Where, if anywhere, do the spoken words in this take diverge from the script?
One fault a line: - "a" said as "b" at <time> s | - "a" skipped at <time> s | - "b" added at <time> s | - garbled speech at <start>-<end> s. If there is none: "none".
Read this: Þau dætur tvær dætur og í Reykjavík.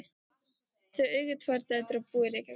- "dætur" said as "eiga" at 1.2 s
- "búa" added at 2.1 s